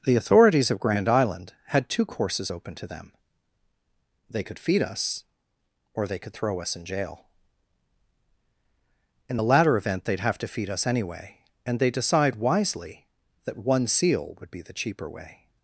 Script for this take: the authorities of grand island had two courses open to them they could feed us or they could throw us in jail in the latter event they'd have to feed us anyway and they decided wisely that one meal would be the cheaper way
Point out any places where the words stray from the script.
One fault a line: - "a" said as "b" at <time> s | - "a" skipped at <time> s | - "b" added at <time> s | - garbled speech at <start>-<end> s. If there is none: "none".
- "decided" said as "decide" at 11.9 s
- "meal" said as "seal" at 13.9 s